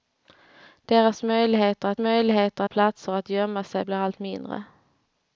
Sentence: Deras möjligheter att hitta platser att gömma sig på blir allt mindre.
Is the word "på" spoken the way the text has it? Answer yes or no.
no